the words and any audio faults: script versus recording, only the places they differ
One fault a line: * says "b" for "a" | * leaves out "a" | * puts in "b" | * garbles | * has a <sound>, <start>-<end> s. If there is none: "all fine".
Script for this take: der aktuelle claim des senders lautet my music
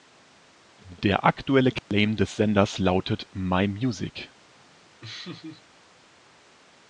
* has a dropout, 1.8-1.9 s
* has a laugh, 5.0-5.6 s